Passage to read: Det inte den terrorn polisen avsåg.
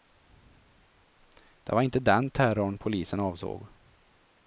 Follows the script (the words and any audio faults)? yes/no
no